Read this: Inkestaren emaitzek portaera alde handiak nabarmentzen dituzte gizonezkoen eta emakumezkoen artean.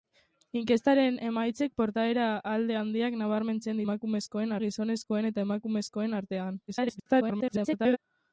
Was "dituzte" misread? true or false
true